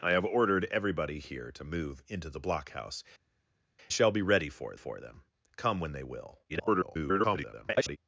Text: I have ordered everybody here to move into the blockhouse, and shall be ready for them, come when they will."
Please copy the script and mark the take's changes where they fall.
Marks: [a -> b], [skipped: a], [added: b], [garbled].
I have ordered everybody here to move into the blockhouse, [skipped: and] shall be ready for [added: for] them, come when they will." [garbled]